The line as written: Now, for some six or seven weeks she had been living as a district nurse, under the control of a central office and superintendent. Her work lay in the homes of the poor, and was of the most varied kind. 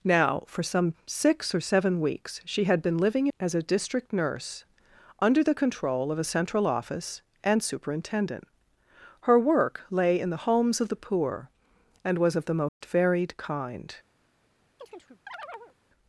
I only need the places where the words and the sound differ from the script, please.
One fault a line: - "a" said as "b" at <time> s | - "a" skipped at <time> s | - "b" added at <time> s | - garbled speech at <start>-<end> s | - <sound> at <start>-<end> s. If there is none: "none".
- dropout at 12.7-12.8 s
- chirp at 14.8-15.7 s